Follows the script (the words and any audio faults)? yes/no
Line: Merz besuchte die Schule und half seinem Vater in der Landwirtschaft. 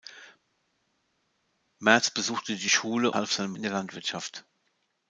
no